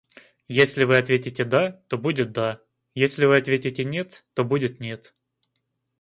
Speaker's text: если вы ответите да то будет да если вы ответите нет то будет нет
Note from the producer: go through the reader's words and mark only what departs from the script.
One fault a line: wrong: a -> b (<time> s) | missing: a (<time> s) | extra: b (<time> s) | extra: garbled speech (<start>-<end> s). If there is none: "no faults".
no faults